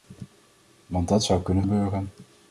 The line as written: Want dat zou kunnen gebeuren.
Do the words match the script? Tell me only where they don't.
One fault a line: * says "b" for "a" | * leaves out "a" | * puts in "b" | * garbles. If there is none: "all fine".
all fine